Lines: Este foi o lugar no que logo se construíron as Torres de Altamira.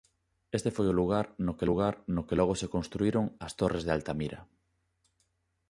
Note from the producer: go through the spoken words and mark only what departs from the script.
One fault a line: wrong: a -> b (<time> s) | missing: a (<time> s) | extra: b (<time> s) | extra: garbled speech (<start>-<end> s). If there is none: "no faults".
extra: lugar no que (1.7 s)